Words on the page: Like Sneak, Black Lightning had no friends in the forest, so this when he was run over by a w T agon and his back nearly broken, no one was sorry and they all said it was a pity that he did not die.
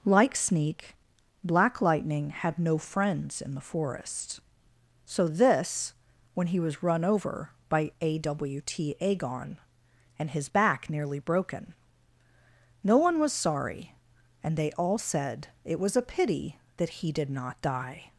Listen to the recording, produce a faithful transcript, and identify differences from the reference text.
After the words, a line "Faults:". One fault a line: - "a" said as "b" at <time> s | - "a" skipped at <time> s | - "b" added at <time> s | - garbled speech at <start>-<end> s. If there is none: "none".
Like Sneak, Black Lightning had no friends in the forest, so this when he was run over by a w T agon and his back nearly broken, no one was sorry and they all said it was a pity that he did not die.
Faults:
none